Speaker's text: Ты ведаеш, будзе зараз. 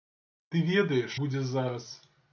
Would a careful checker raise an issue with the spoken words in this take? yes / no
no